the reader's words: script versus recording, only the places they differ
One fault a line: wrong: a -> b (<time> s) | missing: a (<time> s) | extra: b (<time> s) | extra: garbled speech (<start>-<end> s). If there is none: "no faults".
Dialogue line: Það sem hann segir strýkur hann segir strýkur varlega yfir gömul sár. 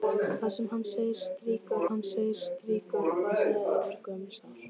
no faults